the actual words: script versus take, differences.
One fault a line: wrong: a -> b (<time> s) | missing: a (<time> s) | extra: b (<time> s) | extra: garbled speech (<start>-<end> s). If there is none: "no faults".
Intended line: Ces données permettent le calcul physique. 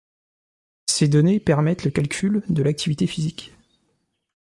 extra: de l'activité (2.5 s)